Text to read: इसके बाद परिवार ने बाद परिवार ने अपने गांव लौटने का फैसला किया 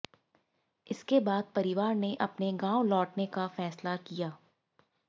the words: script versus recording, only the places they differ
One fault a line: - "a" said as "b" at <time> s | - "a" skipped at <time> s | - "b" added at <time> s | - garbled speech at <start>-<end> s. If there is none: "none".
- "बाद परिवार ने" skipped at 2.1 s